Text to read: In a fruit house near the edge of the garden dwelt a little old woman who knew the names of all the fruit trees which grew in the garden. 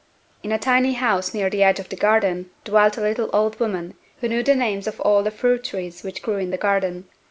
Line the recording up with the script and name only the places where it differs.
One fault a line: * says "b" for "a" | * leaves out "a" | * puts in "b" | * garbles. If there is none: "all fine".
* says "tiny" for "fruit"